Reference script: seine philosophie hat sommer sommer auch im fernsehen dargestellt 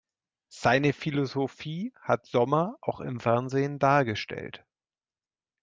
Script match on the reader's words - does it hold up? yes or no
no